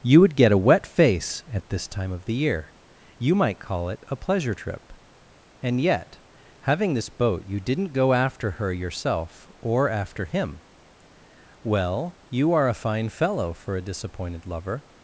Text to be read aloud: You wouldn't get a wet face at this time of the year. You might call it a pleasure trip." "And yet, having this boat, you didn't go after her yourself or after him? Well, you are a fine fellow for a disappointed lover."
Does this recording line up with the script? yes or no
no